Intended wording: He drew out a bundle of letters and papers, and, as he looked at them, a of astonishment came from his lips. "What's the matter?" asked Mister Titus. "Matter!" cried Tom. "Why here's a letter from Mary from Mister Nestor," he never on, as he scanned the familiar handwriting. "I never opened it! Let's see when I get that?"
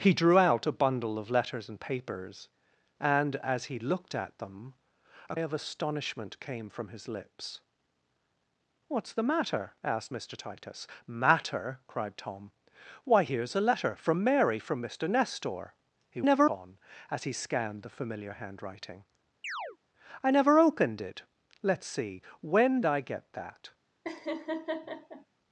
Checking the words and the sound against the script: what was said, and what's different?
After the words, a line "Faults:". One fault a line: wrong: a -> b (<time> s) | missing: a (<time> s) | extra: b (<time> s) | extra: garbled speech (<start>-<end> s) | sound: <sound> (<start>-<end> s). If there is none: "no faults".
He drew out a bundle of letters and papers, and, as he looked at them, a of astonishment came from his lips. "What's the matter?" asked Mister Titus. "Matter!" cried Tom. "Why here's a letter from Mary from Mister Nestor," he never on, as he scanned the familiar handwriting. "I never opened it! Let's see when I get that?"
Faults:
sound: chirp (19.4-19.8 s)
sound: laugh (24.0-25.3 s)